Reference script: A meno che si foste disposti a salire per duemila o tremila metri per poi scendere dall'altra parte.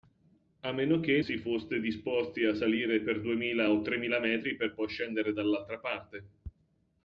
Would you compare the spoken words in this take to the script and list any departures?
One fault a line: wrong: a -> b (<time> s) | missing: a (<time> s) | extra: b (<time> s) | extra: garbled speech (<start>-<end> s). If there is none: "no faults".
no faults